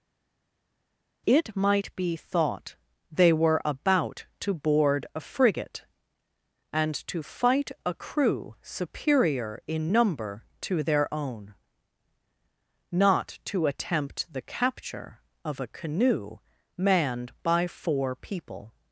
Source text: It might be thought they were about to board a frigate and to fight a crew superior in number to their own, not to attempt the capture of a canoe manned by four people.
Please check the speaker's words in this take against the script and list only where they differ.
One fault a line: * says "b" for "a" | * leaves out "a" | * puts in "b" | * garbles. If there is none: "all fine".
all fine